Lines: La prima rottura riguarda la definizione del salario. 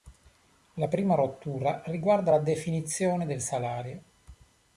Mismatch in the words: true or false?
false